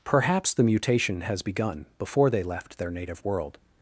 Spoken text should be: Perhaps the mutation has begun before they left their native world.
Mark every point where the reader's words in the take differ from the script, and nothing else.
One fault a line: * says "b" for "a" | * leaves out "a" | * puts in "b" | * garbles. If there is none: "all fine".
all fine